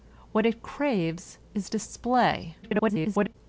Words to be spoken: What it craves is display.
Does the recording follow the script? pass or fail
fail